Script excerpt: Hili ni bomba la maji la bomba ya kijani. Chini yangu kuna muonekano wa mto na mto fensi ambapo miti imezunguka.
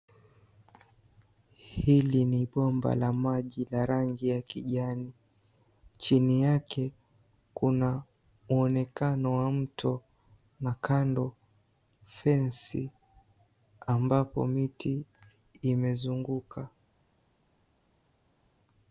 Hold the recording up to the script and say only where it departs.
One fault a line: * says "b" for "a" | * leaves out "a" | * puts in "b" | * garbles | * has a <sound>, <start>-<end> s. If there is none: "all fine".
* says "rangi" for "bomba"
* says "yake" for "yangu"
* says "kando" for "mto"